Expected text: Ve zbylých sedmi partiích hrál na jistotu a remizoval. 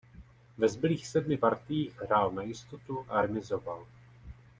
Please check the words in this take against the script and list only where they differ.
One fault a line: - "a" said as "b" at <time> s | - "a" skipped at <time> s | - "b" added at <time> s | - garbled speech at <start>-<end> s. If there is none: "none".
none